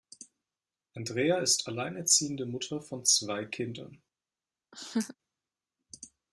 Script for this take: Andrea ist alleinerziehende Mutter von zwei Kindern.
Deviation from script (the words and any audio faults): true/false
true